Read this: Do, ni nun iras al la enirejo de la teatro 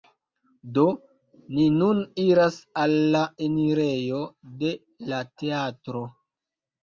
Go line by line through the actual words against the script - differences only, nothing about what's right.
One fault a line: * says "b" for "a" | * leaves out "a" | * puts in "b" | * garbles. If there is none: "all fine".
all fine